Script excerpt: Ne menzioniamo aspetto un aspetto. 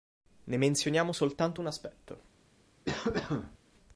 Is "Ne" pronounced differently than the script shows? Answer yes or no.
no